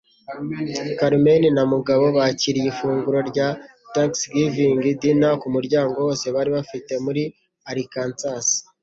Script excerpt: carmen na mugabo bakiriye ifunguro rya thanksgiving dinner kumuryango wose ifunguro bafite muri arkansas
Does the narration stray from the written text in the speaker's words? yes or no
yes